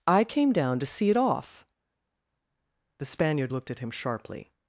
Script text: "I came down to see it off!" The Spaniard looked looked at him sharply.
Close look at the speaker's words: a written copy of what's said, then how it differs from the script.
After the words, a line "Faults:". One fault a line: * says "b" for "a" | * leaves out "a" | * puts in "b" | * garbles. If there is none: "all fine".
"I came down to see it off!" The Spaniard looked at him sharply.
Faults:
* leaves out "looked"